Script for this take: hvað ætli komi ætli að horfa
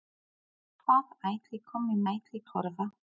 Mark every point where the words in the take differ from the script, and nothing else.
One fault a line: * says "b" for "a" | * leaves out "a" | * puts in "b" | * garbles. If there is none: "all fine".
all fine